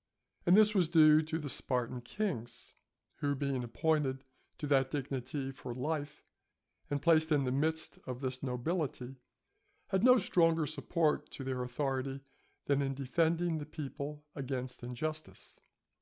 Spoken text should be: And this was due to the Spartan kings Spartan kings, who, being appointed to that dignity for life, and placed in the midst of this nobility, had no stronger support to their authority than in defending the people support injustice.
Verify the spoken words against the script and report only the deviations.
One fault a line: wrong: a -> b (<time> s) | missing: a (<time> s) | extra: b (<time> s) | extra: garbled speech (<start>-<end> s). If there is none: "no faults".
missing: Spartan kings (2.7 s)
wrong: support -> against (14.3 s)